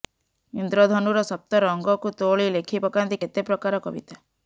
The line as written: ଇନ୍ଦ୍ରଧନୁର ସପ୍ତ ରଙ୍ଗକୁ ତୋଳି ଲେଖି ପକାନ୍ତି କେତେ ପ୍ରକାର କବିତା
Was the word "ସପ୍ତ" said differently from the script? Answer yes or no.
no